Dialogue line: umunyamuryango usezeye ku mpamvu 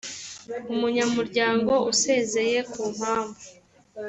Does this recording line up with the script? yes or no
yes